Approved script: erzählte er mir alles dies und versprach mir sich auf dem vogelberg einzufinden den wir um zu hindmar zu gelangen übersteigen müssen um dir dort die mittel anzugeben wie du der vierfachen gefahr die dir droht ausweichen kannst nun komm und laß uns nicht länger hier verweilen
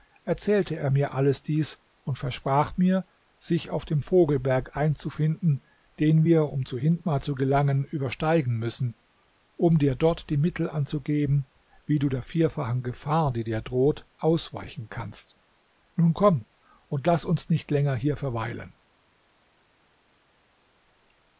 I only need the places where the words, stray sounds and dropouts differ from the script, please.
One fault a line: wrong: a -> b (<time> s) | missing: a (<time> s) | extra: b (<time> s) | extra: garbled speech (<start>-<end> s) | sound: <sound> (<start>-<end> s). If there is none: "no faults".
no faults